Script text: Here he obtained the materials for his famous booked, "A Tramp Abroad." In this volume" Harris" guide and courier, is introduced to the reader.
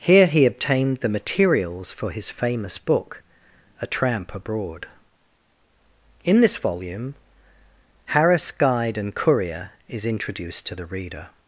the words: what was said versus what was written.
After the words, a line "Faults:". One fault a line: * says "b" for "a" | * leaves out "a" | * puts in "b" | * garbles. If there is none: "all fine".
Here he obtained the materials for his famous book, "A Tramp Abroad." In this volume" Harris" guide and courier, is introduced to the reader.
Faults:
* says "book" for "booked"